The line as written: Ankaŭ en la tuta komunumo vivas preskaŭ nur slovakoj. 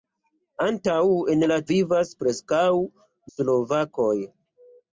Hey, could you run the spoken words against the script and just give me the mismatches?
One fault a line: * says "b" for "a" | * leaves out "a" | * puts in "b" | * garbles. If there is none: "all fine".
* leaves out "tuta komunumo"
* leaves out "nur"